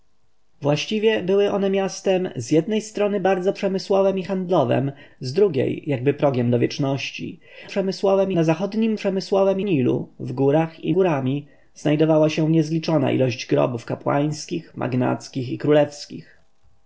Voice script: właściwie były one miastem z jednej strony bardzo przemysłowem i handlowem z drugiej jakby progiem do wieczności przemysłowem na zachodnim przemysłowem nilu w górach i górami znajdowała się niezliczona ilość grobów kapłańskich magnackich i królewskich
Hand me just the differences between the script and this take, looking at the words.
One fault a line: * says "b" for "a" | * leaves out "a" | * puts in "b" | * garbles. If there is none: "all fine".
all fine